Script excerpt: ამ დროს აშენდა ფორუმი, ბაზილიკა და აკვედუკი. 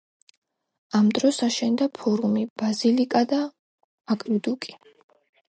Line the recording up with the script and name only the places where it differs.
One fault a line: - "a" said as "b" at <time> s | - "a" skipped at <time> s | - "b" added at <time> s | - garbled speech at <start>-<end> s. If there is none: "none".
none